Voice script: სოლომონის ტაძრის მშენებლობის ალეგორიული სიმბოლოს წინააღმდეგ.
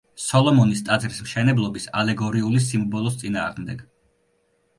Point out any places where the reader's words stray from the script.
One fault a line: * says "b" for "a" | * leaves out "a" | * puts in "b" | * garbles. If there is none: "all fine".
all fine